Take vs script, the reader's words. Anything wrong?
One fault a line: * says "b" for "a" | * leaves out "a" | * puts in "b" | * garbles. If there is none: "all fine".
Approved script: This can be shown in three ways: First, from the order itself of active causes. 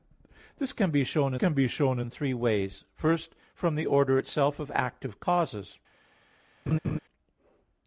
* puts in "can be shown"